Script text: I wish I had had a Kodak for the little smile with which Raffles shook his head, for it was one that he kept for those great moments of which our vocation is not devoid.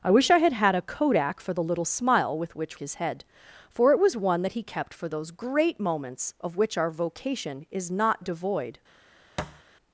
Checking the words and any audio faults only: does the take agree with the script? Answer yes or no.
no